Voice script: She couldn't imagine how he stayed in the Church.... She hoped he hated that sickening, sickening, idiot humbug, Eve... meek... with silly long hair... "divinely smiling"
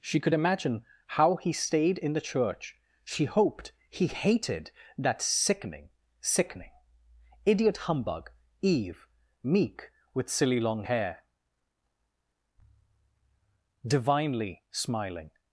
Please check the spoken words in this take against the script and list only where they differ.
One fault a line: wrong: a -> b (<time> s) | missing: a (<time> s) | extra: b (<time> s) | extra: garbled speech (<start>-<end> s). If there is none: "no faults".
wrong: couldn't -> could (0.2 s)